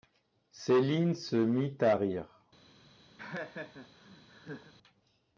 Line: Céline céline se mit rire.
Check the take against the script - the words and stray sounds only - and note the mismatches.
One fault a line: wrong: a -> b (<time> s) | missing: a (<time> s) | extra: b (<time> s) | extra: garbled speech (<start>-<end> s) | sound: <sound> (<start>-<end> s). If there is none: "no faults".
missing: céline (1.1 s)
extra: à (1.8 s)
sound: laugh (3.2-4.7 s)